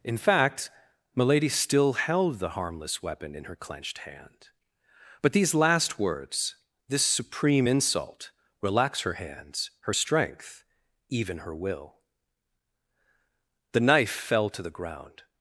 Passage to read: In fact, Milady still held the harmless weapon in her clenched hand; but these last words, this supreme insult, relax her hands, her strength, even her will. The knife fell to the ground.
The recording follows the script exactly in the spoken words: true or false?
true